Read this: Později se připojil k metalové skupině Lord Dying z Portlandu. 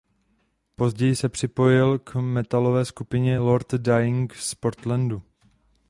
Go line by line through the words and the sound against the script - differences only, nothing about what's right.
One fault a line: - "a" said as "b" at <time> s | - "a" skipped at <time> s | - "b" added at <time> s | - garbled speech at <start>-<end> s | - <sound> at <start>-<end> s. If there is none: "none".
none